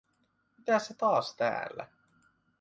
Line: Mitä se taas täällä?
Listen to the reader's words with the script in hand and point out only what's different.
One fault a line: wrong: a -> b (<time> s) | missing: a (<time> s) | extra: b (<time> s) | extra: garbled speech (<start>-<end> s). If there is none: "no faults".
no faults